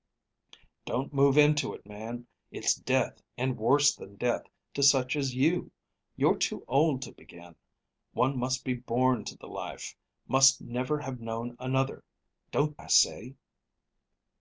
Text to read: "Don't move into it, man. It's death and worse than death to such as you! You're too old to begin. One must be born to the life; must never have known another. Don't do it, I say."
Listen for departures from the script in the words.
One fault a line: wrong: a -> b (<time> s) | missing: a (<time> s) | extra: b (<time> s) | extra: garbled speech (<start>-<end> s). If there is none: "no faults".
missing: do it (12.8 s)